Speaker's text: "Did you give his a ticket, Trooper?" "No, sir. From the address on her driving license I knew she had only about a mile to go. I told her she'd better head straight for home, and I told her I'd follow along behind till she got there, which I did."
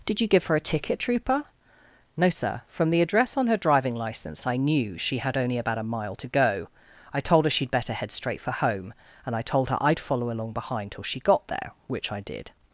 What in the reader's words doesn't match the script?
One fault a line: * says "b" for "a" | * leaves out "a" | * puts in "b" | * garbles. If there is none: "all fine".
* says "her" for "his"